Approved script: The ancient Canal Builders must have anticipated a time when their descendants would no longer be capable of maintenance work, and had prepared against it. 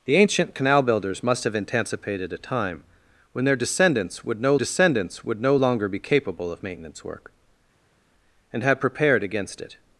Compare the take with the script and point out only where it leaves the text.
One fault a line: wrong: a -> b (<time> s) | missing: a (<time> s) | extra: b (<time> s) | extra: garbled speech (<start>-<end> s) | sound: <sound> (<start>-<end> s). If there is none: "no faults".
extra: descendants would no (4.5 s)